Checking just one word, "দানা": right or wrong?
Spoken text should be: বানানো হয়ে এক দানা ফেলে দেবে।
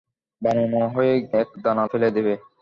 right